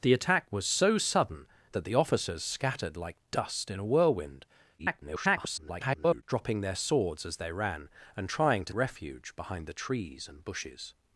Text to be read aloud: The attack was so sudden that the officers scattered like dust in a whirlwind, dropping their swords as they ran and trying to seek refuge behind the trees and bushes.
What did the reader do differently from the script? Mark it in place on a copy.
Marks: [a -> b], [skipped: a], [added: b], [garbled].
The attack was so sudden that the officers scattered like dust in a whirlwind, [garbled] dropping their swords as they ran and trying to [skipped: seek] refuge behind the trees and bushes.